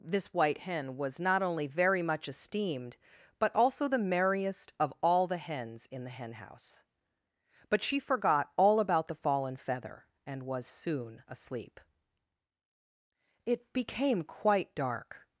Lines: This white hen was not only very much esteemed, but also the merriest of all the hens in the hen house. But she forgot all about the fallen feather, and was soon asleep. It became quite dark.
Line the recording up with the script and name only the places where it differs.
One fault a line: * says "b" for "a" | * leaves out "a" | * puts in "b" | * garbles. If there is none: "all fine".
all fine